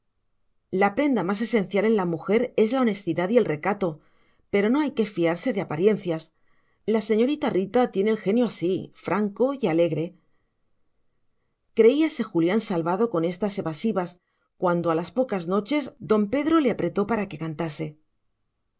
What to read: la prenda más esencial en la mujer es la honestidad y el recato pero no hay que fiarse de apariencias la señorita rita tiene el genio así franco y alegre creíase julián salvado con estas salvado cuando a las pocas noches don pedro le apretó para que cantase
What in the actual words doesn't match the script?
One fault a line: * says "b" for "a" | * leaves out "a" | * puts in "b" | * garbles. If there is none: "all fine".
* says "evasivas" for "salvado"